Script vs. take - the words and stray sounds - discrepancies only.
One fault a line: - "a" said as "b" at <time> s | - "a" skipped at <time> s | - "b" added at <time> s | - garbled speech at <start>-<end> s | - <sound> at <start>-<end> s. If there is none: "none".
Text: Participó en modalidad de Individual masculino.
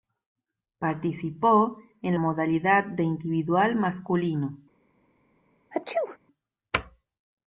- sneeze at 5.7-6.2 s